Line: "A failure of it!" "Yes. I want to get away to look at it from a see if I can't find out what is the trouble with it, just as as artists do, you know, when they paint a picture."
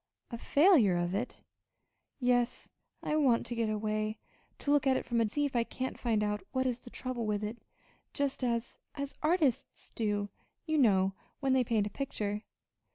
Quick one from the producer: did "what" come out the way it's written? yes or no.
yes